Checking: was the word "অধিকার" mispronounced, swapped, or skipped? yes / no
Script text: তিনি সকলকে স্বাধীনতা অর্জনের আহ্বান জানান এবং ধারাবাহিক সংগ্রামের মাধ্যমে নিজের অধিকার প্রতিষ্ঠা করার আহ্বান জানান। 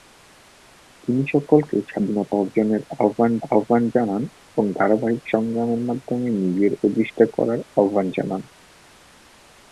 yes